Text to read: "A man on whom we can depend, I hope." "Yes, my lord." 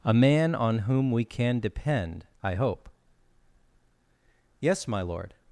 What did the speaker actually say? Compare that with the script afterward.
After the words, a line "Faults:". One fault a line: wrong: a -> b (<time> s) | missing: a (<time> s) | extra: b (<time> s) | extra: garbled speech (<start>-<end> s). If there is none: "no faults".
"A man on whom we can depend, I hope." "Yes, my lord."
Faults:
no faults